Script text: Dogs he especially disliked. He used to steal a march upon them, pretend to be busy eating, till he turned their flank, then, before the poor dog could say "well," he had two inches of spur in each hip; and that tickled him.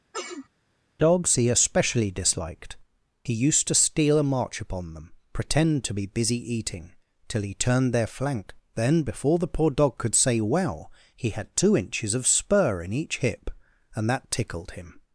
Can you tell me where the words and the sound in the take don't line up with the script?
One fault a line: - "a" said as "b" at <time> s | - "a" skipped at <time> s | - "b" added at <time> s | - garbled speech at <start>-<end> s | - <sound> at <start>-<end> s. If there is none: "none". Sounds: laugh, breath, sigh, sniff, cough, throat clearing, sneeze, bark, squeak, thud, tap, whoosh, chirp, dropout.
- sneeze at 0.1-0.5 s